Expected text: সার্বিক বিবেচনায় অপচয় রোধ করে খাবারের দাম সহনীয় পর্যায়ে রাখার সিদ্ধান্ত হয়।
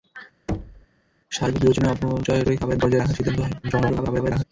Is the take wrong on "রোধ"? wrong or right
wrong